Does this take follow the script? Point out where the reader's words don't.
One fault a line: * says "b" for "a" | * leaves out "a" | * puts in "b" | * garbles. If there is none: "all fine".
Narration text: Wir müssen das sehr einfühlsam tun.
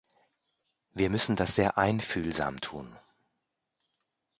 all fine